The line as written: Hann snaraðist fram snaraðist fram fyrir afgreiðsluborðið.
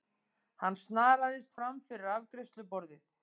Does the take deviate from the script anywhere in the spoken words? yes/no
yes